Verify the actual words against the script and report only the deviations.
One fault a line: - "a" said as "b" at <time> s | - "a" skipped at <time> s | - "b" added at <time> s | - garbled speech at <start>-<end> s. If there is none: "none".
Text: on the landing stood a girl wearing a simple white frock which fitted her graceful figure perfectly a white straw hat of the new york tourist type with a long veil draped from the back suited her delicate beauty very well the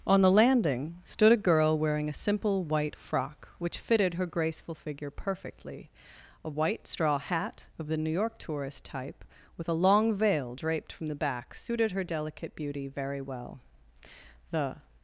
none